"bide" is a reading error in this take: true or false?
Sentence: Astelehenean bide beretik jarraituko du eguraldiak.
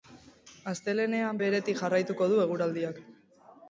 true